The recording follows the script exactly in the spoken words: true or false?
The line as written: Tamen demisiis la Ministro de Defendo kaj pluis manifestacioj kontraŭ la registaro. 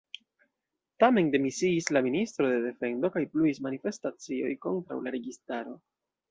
true